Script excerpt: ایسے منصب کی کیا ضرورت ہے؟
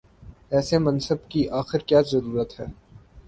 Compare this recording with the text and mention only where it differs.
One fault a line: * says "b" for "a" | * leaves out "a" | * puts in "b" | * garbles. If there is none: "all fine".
* puts in "آخر"